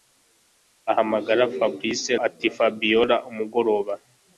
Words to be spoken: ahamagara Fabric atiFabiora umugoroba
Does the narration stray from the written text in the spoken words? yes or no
no